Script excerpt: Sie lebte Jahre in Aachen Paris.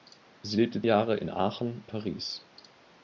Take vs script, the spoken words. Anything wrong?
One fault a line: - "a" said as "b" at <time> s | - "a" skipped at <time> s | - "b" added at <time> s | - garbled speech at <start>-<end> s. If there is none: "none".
none